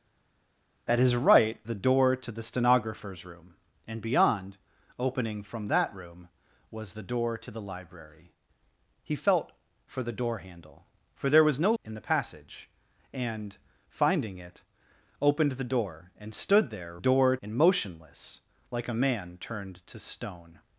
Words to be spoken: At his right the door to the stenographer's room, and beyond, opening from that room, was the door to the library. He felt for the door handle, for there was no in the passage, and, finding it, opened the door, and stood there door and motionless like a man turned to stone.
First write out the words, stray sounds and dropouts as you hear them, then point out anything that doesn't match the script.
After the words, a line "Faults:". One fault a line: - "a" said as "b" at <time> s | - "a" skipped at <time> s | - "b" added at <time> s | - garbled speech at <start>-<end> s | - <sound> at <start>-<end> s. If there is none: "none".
At his right the door to the stenographer's room, and beyond, opening from that room, was the door to the library. He felt for the door handle, for there was no in the passage, and, finding it, opened the door, and stood there door and motionless like a man turned to stone.
Faults:
none